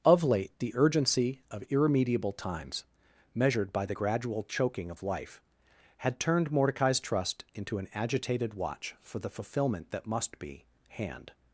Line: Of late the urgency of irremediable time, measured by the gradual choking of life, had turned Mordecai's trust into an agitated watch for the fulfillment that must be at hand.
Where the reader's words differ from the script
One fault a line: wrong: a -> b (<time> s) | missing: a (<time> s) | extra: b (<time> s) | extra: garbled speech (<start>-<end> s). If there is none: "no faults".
wrong: time -> times (2.3 s)
missing: at (10.7 s)